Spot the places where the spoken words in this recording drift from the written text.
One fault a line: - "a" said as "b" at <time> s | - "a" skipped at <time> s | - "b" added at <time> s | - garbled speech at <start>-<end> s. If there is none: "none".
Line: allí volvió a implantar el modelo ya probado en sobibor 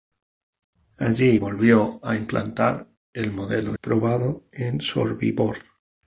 - "ya" skipped at 3.8 s